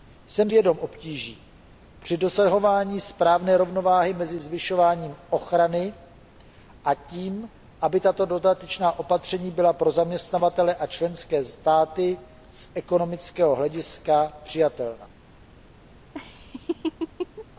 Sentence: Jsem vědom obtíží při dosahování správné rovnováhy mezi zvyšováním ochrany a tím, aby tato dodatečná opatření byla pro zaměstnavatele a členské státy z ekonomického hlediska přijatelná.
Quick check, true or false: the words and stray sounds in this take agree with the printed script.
false